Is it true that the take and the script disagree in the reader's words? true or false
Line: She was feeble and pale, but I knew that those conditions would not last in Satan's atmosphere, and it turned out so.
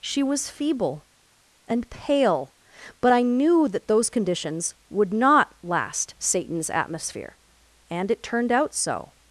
true